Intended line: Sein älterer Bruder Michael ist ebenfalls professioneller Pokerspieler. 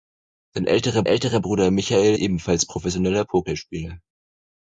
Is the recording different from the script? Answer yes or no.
yes